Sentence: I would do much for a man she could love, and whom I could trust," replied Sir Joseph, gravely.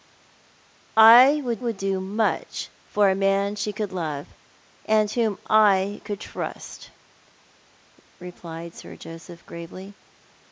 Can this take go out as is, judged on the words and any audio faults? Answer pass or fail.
fail